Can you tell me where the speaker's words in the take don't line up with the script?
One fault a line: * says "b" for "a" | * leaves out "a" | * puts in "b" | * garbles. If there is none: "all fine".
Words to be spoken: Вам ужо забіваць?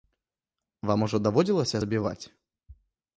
* puts in "даводзілася"